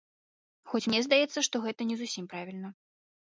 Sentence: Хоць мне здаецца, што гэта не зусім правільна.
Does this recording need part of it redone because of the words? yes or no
no